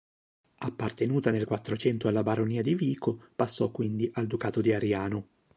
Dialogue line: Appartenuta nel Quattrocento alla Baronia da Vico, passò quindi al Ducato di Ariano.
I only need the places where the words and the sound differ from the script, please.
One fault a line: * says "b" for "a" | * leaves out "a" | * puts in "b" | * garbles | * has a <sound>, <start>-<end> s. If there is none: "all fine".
* says "di" for "da"